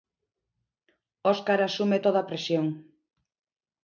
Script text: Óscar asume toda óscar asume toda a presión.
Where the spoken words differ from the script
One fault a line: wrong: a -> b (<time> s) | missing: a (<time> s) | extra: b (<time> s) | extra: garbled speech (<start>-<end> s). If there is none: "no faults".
missing: óscar asume toda (2.2 s)